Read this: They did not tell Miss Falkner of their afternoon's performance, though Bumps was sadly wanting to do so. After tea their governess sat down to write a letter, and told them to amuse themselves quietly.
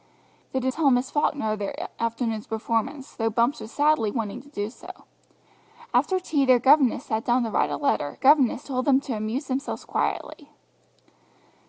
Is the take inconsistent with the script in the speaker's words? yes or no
yes